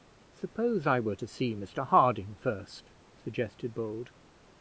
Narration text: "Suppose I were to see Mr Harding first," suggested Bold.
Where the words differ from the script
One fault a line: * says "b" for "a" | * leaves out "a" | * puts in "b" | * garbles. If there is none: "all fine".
all fine